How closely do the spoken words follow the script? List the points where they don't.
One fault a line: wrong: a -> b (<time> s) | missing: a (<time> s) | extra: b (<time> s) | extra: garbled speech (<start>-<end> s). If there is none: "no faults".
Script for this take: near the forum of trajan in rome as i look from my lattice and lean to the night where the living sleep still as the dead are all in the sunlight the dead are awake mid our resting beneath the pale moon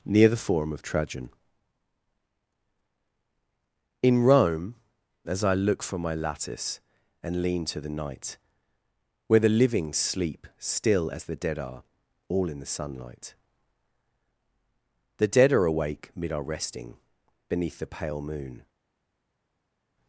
no faults